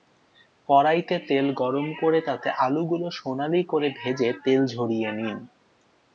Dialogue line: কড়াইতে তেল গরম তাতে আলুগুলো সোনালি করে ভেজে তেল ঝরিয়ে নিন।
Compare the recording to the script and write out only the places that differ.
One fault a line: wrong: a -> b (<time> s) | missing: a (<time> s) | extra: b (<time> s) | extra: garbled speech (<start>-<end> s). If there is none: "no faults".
extra: করে (2.0 s)